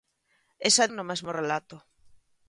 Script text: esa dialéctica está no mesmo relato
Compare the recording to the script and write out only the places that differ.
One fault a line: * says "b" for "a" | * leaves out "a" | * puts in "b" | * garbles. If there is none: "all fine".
* leaves out "dialéctica está"